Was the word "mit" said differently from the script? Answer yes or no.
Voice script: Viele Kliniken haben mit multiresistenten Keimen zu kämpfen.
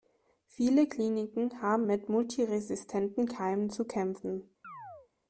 no